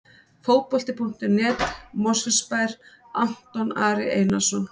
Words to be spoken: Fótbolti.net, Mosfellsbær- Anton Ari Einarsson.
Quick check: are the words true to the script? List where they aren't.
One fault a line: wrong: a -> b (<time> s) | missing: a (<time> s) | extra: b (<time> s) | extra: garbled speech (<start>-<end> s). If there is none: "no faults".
no faults